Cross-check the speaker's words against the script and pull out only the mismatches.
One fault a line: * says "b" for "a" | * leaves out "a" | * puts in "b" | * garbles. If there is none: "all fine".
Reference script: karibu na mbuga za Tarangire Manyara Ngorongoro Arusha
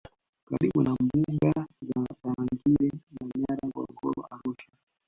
all fine